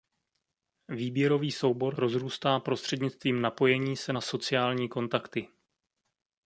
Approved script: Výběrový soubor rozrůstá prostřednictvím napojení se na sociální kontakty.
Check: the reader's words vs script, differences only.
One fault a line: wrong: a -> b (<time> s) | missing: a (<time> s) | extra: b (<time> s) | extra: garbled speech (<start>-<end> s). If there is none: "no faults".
no faults